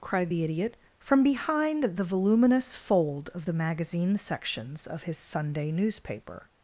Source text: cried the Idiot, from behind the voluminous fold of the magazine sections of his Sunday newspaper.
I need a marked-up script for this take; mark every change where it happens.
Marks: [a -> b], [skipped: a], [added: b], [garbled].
cried the Idiot, from behind the voluminous fold of the magazine sections of his Sunday newspaper.